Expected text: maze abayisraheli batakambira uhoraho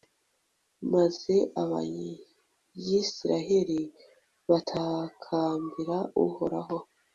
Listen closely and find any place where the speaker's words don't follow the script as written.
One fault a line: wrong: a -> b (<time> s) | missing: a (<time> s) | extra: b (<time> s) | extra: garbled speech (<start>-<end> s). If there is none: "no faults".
no faults